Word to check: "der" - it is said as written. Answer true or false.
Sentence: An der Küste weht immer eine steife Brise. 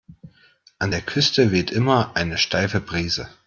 true